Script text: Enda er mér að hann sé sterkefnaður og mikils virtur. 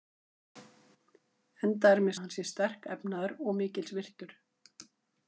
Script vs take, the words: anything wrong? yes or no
no